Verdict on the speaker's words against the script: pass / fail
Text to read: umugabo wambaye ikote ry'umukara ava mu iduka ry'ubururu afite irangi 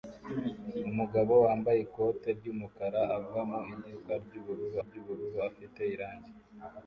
fail